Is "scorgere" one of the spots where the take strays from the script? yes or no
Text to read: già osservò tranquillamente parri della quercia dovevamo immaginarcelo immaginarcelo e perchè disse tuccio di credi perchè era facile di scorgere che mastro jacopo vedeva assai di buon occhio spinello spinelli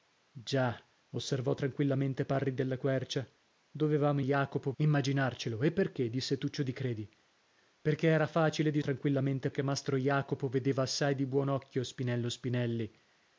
yes